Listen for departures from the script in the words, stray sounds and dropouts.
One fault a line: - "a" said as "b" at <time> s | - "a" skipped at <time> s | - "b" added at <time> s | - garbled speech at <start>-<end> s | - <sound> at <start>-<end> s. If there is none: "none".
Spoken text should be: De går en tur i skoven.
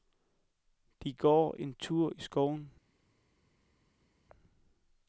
none